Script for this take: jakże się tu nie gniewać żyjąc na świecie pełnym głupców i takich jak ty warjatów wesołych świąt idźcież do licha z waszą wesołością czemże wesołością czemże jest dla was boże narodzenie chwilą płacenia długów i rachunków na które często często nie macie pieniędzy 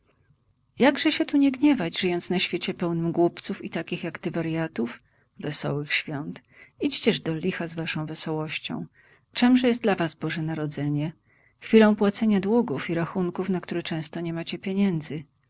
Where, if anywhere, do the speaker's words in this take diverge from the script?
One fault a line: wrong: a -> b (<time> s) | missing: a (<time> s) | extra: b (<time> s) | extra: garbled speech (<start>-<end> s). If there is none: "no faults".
missing: wesołością czemże (9.7 s)
missing: często (14.2 s)